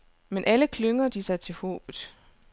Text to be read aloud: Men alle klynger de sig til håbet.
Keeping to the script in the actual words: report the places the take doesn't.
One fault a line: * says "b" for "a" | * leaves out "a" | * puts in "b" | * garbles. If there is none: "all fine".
all fine